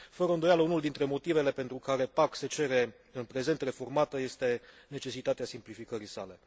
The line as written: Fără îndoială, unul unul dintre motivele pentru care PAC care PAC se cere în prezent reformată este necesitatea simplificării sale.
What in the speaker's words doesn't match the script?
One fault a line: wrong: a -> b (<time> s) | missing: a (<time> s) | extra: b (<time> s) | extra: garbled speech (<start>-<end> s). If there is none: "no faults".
missing: unul (0.8 s)
missing: care PAC (2.3 s)